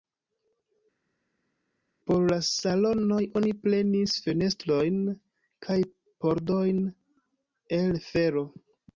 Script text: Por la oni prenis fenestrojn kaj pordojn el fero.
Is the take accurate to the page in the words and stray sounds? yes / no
no